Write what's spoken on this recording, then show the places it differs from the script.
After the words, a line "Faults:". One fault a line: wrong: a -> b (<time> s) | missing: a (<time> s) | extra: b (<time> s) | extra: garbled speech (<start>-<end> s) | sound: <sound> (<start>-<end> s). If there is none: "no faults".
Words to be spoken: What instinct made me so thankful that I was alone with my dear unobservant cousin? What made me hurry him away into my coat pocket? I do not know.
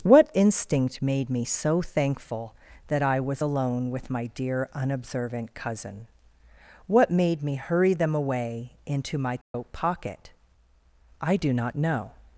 What instinct made me so thankful that I was alone with my dear unobservant cousin? What made me hurry them away into my coat pocket? I do not know.
Faults:
wrong: him -> them (7.9 s)
sound: dropout (9.4-9.5 s)